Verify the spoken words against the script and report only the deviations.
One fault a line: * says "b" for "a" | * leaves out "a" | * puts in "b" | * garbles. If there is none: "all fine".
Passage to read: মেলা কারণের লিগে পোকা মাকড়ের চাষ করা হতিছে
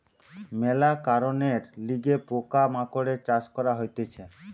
all fine